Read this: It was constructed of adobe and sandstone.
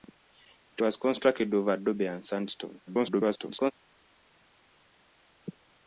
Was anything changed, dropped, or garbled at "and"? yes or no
no